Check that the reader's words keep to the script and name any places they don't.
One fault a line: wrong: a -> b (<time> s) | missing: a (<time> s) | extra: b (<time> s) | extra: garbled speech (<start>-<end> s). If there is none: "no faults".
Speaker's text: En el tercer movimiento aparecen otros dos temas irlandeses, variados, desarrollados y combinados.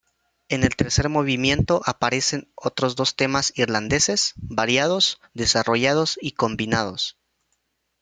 no faults